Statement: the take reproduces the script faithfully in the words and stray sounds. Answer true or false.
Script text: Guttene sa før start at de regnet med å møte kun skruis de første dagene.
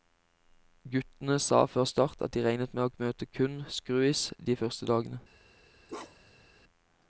false